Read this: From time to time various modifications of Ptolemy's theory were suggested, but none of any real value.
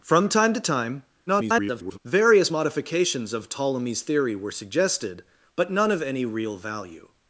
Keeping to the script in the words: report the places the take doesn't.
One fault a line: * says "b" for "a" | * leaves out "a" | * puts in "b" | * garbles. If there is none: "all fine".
* garbles